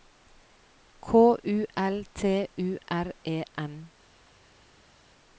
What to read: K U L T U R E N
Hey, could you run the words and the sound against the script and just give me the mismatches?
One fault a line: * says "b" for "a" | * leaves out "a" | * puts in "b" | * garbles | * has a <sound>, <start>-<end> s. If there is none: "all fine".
all fine